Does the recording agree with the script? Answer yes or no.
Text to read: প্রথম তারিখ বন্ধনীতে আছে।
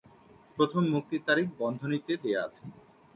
no